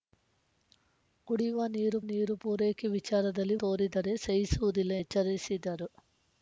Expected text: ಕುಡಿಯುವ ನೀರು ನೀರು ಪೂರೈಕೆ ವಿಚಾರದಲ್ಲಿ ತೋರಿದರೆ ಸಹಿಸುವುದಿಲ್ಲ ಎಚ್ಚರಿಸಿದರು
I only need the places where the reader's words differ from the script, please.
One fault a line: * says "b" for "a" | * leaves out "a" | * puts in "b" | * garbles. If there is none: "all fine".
all fine